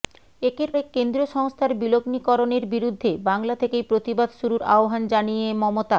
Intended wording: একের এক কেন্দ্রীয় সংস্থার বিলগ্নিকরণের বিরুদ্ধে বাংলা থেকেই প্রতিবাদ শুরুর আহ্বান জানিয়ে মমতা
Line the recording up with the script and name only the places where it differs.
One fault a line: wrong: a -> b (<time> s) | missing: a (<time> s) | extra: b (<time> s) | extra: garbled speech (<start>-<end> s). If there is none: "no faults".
no faults